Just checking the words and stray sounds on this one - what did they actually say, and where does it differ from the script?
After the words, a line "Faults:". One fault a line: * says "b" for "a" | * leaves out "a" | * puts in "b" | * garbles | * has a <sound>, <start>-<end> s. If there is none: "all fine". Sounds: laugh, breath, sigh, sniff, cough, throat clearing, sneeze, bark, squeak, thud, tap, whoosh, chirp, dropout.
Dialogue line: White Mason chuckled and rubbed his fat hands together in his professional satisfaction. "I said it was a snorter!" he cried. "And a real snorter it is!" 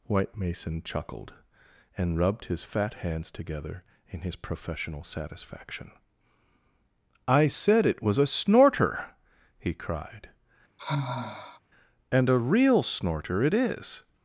White Mason chuckled and rubbed his fat hands together in his professional satisfaction. "I said it was a snorter!" he cried. "And a real snorter it is!"
Faults:
* has a sigh, 10.8-11.6 s